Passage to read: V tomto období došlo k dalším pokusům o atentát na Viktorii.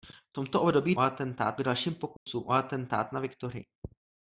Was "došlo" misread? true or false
true